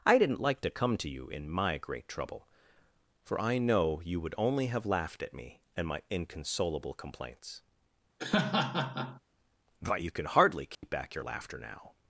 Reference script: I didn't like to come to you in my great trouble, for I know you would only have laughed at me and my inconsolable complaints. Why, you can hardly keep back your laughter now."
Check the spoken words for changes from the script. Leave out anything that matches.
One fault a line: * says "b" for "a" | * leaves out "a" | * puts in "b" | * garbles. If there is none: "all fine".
* says "But" for "Why"